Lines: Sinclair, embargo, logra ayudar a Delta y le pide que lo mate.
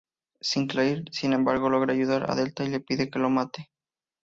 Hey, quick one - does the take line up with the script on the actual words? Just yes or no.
no